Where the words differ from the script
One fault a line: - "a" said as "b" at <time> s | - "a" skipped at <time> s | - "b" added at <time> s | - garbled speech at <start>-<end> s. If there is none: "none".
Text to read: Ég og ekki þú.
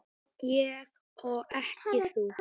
none